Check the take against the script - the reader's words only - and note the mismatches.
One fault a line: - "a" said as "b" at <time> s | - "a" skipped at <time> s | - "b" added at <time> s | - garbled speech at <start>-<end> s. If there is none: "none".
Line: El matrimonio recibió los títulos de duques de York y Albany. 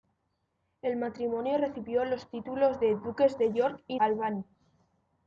none